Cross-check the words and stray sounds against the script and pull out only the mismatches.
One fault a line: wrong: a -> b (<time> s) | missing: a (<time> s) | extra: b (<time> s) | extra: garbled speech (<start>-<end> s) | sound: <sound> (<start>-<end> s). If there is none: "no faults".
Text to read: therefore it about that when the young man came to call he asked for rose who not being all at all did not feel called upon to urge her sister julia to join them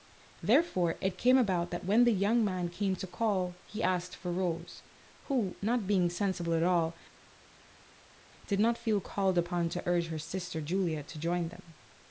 extra: came (1.2 s)
wrong: all -> sensible (6.1 s)